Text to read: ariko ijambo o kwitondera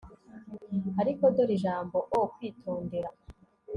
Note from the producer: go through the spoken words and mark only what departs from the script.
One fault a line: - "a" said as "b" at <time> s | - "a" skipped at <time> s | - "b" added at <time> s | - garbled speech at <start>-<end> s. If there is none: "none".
- "dore" added at 1.4 s